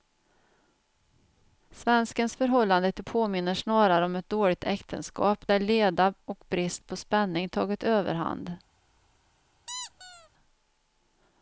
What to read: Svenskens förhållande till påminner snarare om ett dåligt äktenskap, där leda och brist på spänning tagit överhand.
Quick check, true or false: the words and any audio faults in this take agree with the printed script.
false